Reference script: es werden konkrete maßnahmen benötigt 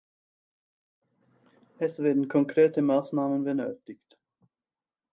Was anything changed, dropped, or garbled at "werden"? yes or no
no